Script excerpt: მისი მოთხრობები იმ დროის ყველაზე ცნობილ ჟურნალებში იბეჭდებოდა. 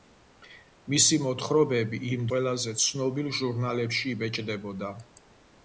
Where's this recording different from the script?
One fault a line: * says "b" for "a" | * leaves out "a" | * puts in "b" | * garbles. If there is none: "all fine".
* leaves out "დროის"